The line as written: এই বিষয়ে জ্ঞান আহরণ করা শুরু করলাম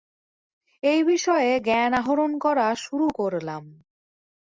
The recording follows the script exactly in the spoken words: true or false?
true